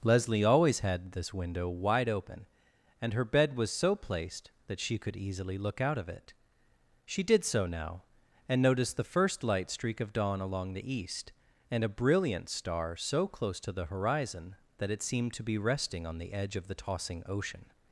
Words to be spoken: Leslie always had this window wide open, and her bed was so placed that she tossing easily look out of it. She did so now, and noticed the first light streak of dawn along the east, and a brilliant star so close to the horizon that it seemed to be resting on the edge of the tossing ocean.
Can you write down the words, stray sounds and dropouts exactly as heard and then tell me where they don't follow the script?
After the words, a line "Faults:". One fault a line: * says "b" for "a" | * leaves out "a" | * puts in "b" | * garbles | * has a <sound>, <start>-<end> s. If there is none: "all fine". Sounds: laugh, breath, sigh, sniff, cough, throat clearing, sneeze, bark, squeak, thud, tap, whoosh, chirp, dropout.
Leslie always had this window wide open, and her bed was so placed that she could easily look out of it. She did so now, and noticed the first light streak of dawn along the east, and a brilliant star so close to the horizon that it seemed to be resting on the edge of the tossing ocean.
Faults:
* says "could" for "tossing"